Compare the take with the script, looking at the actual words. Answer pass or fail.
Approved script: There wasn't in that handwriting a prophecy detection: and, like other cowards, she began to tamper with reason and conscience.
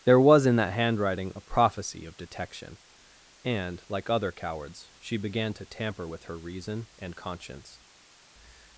fail